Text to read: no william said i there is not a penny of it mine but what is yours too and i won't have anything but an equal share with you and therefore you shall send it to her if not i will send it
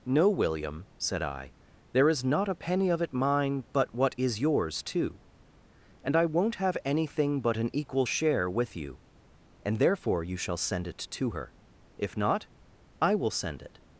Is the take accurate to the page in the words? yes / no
yes